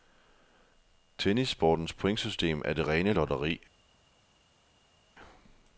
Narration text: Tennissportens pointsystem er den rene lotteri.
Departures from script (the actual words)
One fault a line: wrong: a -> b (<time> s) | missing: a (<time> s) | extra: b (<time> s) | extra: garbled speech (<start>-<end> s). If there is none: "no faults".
wrong: den -> det (2.7 s)